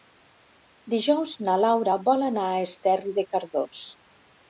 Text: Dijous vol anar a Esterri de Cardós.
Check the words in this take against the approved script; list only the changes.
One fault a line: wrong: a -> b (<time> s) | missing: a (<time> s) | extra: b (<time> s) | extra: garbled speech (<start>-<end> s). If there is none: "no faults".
extra: na Laura (1.5 s)